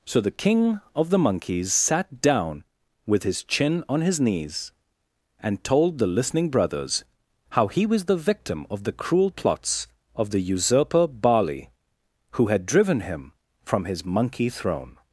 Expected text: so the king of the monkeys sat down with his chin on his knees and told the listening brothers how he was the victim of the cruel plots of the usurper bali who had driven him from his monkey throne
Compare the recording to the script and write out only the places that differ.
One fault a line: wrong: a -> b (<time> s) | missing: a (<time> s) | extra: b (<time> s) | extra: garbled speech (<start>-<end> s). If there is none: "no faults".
no faults